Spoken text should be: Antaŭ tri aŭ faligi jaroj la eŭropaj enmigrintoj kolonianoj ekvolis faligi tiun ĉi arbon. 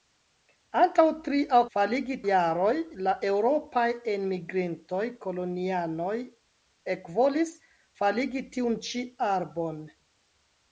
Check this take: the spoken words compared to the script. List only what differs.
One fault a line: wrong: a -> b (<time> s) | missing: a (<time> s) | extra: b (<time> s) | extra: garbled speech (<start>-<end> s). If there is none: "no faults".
no faults